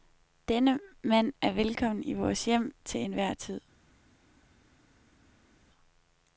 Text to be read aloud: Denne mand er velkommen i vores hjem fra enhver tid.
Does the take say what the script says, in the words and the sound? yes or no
no